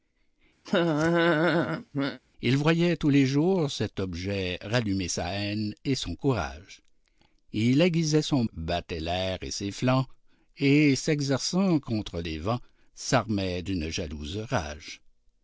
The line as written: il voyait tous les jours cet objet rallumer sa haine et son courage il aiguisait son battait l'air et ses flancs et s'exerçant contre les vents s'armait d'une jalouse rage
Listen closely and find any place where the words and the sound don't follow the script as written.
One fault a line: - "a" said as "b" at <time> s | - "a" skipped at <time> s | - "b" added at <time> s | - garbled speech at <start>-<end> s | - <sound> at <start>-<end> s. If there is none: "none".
- laugh at 0.6-2.2 s